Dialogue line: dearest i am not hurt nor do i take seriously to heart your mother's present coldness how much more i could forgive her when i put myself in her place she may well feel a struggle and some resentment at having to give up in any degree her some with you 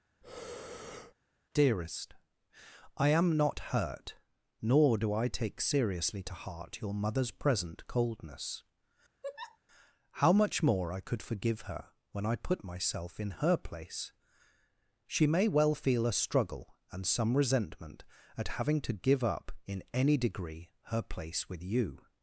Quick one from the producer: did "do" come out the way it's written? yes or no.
yes